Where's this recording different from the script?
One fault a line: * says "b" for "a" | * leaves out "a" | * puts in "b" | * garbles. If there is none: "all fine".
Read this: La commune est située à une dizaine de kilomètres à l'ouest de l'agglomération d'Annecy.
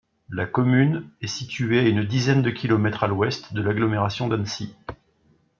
all fine